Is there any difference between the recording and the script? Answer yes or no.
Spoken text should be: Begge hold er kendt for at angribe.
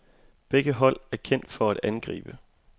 no